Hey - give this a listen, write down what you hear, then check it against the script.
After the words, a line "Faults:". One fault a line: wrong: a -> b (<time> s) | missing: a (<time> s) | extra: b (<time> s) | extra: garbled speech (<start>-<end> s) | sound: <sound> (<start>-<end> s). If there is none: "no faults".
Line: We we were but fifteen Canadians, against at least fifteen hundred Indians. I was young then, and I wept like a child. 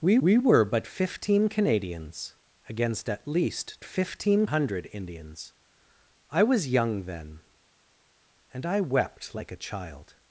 We we were but fifteen Canadians, against at least fifteen hundred Indians. I was young then, and I wept like a child.
Faults:
no faults